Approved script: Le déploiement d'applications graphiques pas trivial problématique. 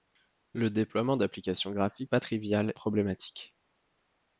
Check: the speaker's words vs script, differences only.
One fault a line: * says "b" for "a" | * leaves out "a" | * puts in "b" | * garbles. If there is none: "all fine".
all fine